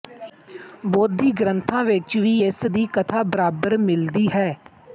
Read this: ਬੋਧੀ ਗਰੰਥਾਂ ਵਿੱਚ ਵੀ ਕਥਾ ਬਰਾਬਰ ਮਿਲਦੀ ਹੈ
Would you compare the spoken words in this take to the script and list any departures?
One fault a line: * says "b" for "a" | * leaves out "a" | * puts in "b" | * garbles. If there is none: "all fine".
* puts in "ਇਸ ਦੀ"